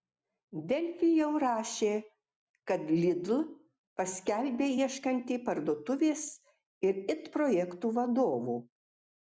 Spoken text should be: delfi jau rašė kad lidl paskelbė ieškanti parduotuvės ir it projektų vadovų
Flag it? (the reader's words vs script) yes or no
no